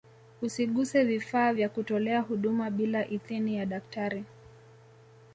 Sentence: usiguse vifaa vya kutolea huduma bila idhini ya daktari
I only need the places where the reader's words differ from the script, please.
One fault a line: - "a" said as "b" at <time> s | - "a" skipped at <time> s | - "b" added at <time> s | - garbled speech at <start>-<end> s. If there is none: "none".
none